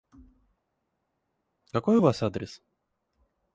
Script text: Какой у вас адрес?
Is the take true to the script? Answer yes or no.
yes